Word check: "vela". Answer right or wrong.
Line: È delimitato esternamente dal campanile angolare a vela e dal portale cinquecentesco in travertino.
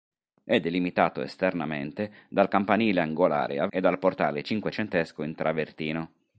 wrong